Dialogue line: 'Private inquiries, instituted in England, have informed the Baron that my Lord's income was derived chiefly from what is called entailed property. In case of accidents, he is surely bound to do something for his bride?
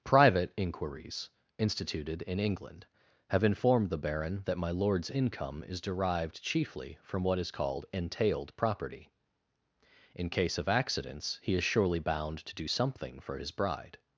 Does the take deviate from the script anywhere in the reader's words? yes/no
yes